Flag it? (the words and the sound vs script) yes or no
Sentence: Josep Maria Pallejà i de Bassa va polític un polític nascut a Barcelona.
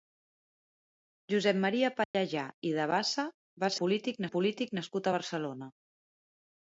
yes